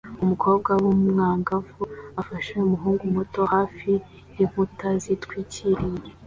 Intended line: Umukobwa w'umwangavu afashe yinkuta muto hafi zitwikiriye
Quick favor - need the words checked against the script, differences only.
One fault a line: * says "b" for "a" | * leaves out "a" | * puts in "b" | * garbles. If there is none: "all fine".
* says "umuhungu" for "yinkuta"
* puts in "yinkuta"